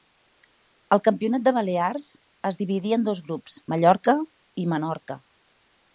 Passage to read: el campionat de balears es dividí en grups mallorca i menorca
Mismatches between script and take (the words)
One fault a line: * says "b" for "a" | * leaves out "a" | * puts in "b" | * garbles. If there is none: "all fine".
* puts in "dos"